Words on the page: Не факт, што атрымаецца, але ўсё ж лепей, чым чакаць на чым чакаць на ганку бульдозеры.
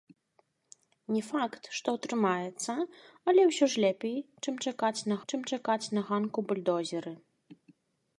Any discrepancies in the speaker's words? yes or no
no